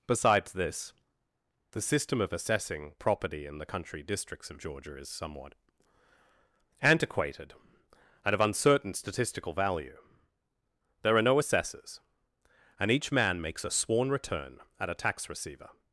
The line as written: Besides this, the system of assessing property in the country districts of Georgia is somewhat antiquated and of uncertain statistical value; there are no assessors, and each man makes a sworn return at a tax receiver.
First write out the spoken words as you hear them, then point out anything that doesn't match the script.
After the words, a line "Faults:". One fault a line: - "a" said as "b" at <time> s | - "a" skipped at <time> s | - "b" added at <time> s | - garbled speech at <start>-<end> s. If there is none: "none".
Besides this, the system of assessing property in the country districts of Georgia is somewhat antiquated and of uncertain statistical value; there are no assessors, and each man makes a sworn return at a tax receiver.
Faults:
none